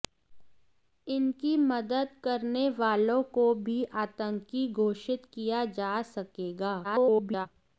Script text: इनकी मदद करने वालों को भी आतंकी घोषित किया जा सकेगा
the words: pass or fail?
fail